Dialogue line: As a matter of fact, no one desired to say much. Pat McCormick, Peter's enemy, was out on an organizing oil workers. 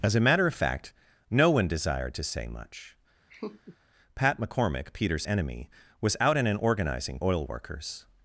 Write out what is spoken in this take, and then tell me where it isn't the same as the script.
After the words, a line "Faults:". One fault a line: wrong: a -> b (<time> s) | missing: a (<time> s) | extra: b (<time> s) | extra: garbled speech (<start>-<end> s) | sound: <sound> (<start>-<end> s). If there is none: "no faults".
As a matter of fact, no one desired to say much. Pat McCormick, Peter's enemy, was out on an organizing oil workers.
Faults:
sound: laugh (3.3-3.8 s)